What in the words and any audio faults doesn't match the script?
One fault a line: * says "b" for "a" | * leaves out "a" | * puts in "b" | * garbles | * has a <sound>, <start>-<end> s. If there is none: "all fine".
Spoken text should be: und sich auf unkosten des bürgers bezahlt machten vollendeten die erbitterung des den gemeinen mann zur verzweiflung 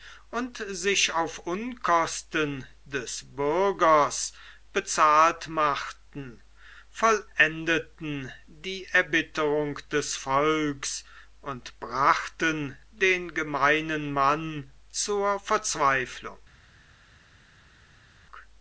* puts in "volks und brachten"